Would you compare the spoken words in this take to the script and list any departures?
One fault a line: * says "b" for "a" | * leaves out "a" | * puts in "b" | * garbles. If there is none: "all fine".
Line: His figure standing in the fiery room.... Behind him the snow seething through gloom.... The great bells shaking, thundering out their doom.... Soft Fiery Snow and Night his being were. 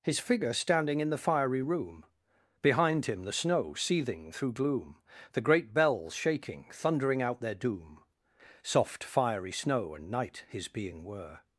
all fine